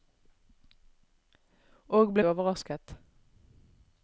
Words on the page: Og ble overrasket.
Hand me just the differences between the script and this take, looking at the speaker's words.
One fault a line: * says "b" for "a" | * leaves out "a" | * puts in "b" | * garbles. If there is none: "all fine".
all fine